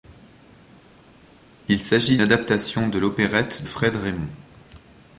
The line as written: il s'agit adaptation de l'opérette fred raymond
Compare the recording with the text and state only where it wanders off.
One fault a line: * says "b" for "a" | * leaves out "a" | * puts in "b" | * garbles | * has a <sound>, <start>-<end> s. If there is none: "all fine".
all fine